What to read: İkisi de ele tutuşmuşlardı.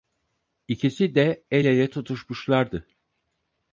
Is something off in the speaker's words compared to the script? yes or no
yes